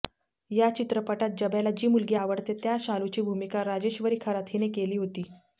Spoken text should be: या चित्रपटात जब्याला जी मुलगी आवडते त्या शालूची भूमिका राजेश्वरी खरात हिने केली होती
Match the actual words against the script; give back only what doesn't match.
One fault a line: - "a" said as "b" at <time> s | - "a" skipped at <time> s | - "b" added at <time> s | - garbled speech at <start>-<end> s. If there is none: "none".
none